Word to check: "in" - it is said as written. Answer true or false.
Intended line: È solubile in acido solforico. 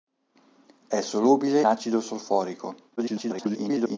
false